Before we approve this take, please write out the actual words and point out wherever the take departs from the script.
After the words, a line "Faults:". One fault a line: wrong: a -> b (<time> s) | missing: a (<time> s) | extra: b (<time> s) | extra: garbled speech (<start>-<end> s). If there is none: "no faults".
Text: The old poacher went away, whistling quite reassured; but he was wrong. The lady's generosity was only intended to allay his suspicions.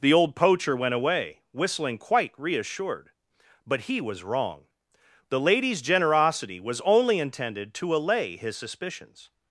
The old poacher went away, whistling quite reassured; but he was wrong. The lady's generosity was only intended to allay his suspicions.
Faults:
no faults